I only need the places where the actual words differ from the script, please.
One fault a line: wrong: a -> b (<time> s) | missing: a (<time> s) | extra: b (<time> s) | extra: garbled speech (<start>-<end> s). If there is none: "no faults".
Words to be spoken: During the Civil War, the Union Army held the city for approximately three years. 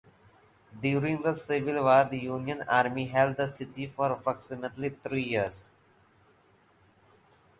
no faults